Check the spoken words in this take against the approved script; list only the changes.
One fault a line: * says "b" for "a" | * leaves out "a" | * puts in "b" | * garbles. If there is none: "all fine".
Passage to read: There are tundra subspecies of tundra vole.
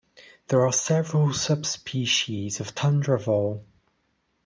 * says "several" for "tundra"